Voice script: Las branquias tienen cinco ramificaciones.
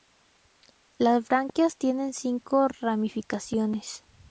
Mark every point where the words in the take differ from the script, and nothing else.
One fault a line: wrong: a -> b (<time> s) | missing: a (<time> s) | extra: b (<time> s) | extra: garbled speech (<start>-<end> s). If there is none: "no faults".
no faults